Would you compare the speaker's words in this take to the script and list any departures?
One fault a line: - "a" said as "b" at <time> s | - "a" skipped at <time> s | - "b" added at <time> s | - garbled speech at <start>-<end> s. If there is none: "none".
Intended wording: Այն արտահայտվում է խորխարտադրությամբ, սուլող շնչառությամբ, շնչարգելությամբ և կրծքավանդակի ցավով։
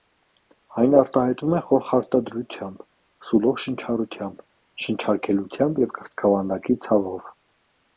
none